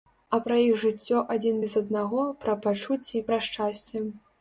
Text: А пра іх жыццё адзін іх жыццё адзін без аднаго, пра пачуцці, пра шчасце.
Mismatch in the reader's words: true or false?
true